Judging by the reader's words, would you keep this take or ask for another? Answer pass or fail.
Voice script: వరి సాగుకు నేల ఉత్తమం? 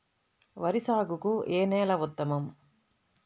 fail